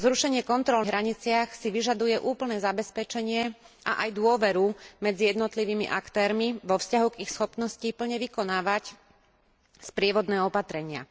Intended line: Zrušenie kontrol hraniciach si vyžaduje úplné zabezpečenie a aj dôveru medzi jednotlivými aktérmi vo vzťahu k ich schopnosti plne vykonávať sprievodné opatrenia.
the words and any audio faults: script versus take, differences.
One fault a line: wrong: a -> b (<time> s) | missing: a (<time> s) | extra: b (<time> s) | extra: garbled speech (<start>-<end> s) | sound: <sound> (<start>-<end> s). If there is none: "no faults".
no faults